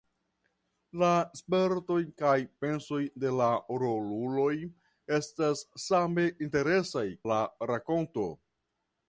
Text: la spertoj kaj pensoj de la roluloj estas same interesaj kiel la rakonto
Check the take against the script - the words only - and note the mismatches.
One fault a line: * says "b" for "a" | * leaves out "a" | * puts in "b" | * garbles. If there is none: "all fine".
* leaves out "kiel"